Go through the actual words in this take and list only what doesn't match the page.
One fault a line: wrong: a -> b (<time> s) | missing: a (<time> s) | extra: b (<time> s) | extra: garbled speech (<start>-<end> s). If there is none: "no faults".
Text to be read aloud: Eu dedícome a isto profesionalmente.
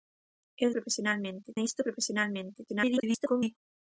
wrong: dedícome -> profesionalmente (0.8 s)
extra: garbled speech (2.7-3.6 s)